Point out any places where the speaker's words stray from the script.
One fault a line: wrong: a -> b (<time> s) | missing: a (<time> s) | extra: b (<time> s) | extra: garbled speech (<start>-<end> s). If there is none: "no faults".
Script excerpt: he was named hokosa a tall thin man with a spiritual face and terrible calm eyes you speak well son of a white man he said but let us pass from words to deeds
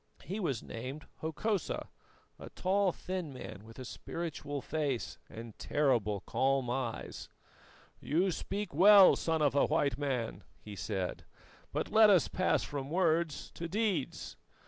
no faults